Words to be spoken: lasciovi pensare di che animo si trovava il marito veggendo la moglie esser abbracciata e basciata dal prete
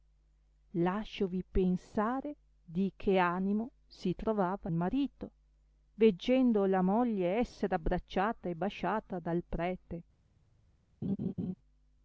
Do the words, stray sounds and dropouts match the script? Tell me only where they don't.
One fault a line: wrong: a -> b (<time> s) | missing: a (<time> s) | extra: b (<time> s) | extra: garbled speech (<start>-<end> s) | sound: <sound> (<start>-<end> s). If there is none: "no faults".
missing: il (4.7 s)
sound: laugh (11.0-11.5 s)